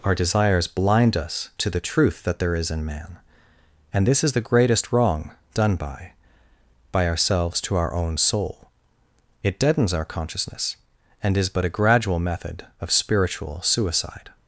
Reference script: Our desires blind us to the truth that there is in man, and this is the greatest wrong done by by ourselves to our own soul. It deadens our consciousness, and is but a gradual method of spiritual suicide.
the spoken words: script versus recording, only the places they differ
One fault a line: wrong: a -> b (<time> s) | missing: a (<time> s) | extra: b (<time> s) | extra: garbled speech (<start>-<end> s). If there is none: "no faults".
no faults